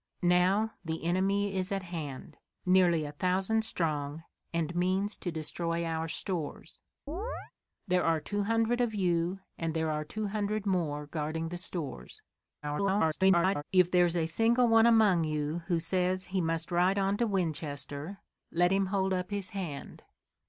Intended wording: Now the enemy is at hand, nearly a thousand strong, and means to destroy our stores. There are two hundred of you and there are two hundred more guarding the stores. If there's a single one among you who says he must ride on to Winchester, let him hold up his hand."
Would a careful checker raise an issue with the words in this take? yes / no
yes